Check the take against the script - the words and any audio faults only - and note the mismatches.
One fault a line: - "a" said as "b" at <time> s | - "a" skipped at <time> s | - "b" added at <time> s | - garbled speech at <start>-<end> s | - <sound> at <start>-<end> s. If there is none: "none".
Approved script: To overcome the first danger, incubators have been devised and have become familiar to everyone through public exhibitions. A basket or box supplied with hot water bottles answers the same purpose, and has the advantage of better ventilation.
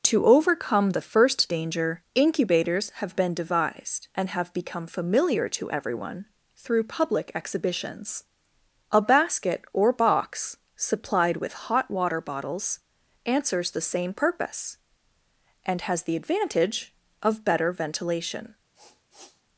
- sniff at 18.7-19.4 s